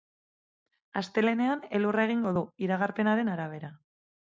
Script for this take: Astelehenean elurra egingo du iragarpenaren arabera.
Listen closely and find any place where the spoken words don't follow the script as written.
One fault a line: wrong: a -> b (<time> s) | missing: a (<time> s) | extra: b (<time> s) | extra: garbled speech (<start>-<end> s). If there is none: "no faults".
no faults